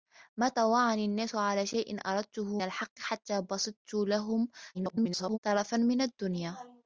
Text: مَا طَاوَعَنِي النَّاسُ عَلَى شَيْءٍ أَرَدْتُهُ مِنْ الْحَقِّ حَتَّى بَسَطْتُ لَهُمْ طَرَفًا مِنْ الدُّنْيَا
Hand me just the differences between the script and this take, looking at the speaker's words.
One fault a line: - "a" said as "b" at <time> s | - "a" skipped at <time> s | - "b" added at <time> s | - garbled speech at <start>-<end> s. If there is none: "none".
- "مِنْ" skipped at 2.6 s
- garbled speech at 4.7-5.4 s